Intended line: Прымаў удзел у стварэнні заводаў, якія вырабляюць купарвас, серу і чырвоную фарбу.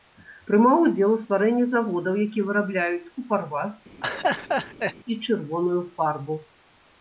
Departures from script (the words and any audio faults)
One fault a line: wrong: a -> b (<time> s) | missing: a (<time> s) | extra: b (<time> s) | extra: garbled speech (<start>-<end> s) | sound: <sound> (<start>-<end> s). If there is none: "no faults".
missing: серу (3.8 s)
sound: laugh (4.0-4.9 s)